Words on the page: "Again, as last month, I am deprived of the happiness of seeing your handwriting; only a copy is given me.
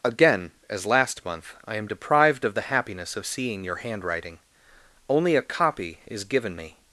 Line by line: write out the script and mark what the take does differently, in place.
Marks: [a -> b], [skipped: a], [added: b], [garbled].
"Again, as last month, I am deprived of the happiness of seeing your handwriting; only a copy is given me.